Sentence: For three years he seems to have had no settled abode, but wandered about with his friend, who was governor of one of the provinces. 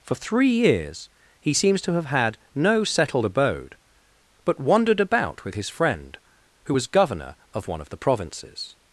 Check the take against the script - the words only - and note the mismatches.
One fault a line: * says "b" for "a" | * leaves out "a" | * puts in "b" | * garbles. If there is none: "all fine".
all fine